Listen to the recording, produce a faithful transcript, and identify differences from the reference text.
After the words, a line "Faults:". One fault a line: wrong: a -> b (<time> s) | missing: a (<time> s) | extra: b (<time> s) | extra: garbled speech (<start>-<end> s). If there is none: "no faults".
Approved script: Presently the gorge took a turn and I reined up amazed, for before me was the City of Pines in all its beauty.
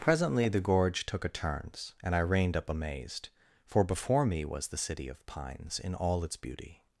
Presently the gorge took a turns and I reined up amazed, for before me was the City of Pines in all its beauty.
Faults:
wrong: turn -> turns (1.3 s)